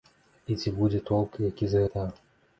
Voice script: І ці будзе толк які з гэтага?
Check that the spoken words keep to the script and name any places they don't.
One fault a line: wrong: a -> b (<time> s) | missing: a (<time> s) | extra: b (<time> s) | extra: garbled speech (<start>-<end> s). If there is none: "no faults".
no faults